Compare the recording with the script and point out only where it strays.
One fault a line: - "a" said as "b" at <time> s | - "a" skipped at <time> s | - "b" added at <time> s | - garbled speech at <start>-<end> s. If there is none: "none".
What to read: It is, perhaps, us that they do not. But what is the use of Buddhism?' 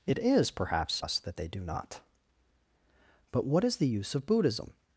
none